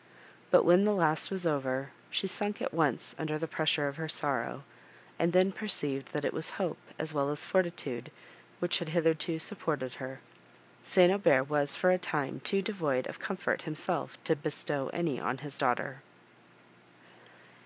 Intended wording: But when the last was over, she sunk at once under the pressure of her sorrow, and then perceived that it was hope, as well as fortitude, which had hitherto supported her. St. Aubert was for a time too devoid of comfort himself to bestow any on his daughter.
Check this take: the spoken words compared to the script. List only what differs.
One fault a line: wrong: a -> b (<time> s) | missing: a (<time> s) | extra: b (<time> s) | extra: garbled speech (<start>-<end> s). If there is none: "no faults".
no faults